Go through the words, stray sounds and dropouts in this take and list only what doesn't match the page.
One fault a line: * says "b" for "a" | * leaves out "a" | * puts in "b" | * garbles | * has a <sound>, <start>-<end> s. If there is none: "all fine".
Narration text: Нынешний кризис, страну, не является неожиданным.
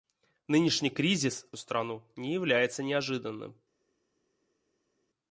all fine